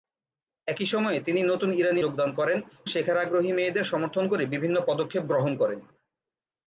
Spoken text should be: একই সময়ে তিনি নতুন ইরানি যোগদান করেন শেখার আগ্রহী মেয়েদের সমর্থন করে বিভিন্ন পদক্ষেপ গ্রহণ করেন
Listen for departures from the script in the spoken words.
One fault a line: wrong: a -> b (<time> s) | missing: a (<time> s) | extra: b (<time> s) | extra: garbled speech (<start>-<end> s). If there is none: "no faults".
no faults